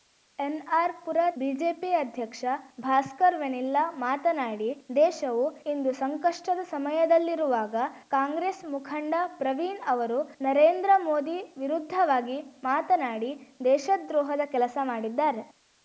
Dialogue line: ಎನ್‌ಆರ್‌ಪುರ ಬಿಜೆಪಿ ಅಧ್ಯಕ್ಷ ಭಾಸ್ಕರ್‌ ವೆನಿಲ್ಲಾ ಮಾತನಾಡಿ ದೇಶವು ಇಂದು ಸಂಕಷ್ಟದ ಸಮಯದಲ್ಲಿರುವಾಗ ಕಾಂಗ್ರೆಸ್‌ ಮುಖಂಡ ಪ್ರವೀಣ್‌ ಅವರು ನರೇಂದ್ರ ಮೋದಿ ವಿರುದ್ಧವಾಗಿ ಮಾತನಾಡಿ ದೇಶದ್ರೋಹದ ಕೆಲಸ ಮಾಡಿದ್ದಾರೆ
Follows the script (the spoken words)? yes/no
yes